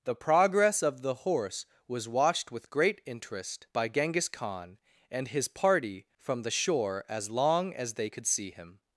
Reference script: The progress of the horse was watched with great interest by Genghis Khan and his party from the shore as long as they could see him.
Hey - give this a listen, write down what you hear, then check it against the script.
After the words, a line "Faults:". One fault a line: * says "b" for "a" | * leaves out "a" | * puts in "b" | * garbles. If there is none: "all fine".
The progress of the horse was watched with great interest by Genghis Khan and his party from the shore as long as they could see him.
Faults:
all fine